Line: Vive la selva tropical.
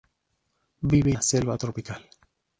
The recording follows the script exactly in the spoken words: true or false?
true